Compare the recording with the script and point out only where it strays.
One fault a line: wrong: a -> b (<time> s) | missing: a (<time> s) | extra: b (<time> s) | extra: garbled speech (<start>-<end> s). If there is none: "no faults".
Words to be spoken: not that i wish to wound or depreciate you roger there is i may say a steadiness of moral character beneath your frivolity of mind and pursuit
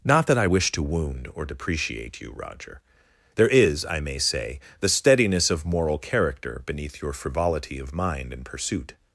wrong: a -> the (4.8 s)